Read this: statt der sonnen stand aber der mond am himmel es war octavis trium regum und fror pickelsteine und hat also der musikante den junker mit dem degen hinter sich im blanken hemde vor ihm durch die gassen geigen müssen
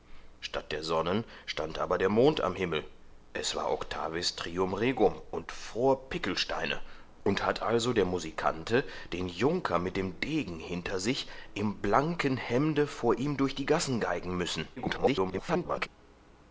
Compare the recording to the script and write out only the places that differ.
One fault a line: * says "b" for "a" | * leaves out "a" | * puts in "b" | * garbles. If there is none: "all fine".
* garbles